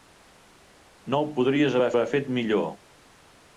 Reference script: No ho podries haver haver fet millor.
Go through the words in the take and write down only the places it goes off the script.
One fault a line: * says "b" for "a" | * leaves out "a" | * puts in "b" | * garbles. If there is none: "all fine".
all fine